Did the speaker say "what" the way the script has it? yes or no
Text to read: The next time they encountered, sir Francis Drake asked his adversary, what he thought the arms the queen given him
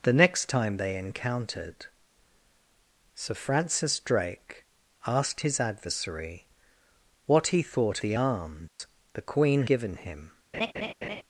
yes